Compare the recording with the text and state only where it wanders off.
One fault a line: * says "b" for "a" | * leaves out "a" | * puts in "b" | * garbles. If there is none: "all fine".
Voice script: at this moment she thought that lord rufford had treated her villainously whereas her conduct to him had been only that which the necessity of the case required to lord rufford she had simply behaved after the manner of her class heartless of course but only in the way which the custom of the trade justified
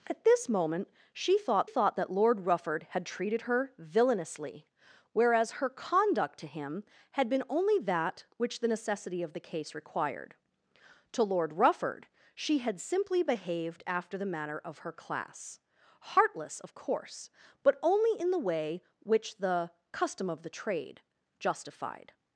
* puts in "thought"